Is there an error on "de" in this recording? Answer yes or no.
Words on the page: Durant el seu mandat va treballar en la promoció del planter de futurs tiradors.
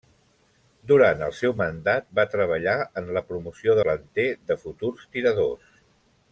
no